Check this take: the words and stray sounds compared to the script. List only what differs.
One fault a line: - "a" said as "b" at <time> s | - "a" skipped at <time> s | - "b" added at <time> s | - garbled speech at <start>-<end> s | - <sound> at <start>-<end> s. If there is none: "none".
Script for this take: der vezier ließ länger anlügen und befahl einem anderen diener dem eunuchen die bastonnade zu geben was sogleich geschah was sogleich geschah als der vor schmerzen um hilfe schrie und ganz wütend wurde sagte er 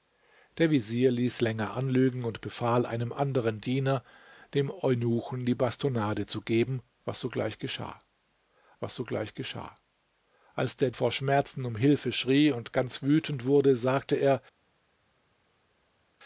none